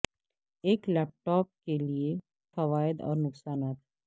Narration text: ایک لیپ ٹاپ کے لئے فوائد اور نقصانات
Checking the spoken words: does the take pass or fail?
pass